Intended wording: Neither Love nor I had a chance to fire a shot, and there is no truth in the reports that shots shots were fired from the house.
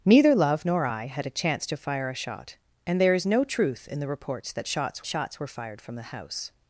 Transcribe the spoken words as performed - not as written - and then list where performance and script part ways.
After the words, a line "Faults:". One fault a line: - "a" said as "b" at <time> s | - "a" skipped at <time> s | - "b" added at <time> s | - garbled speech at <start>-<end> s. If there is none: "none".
Neither Love nor I had a chance to fire a shot, and there is no truth in the reports that shots shots were fired from the house.
Faults:
none